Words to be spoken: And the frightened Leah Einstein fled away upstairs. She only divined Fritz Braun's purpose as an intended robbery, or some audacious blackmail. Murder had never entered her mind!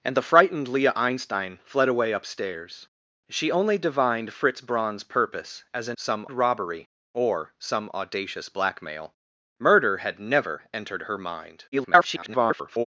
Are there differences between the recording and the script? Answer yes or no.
yes